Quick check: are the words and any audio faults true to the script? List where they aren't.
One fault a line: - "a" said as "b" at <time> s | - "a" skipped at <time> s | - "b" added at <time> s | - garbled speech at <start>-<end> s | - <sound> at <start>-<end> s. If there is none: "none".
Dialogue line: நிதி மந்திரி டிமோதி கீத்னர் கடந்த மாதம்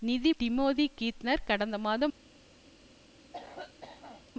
- "மந்திரி" skipped at 0.3 s
- cough at 3.3-4.3 s